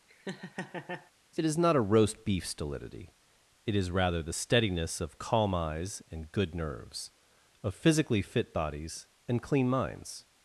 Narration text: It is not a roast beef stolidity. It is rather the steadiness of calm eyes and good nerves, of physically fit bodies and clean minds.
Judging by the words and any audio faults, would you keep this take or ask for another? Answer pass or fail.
fail